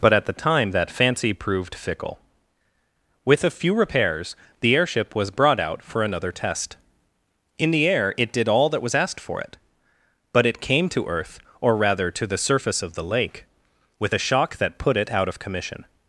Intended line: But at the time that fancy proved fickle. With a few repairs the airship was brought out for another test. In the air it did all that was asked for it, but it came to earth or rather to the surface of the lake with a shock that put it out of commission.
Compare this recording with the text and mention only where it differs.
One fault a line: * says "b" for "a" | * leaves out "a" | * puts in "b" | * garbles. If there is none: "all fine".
all fine